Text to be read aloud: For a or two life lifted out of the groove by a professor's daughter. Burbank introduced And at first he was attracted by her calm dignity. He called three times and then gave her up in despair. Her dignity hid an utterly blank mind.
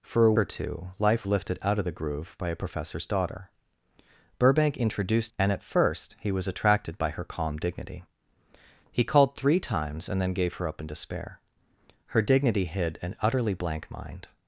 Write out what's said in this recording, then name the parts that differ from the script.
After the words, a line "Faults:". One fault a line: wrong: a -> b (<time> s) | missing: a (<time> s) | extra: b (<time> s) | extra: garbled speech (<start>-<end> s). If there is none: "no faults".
For a or two life lifted out of the groove by a professor's daughter. Burbank introduced And at first he was attracted by her calm dignity. He called three times and then gave her up in despair. Her dignity hid an utterly blank mind.
Faults:
no faults